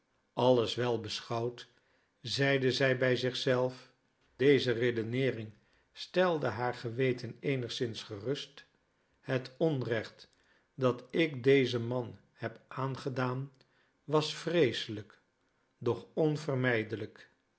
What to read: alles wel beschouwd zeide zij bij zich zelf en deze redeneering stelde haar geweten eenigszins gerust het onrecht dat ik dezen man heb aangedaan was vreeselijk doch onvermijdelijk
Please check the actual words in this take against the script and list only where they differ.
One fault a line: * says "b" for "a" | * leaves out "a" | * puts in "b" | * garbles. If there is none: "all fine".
* leaves out "en"